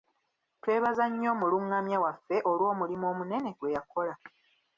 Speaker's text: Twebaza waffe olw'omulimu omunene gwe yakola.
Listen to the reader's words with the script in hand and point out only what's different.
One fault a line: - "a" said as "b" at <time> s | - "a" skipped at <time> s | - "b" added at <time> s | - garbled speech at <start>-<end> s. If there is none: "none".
- "nnyo omulungamya" added at 1.1 s